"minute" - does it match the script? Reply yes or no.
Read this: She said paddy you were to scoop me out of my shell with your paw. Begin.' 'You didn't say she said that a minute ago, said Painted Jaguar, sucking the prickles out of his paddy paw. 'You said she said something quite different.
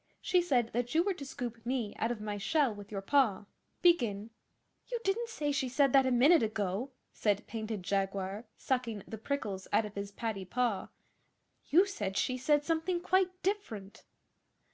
yes